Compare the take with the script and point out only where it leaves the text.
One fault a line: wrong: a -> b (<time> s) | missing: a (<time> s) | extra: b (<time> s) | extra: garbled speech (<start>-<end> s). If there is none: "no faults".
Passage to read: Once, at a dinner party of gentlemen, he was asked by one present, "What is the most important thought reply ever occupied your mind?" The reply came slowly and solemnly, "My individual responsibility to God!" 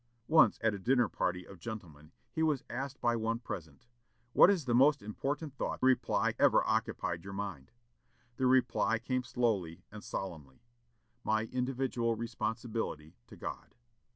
no faults